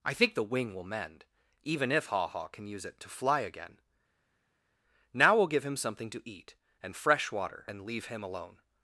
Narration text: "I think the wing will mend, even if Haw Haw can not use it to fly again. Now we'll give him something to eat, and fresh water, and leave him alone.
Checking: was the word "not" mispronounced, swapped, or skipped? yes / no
yes